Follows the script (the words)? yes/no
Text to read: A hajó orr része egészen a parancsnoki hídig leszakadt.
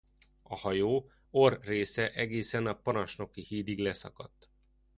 yes